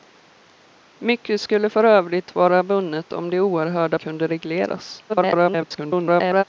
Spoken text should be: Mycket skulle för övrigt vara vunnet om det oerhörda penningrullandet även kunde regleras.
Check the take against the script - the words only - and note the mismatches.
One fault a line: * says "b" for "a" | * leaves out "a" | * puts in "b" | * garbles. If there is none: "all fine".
* leaves out "penningrullandet även"
* garbles